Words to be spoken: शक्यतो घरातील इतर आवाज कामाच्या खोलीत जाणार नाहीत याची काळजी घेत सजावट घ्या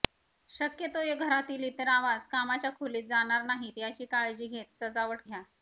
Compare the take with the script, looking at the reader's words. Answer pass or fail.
pass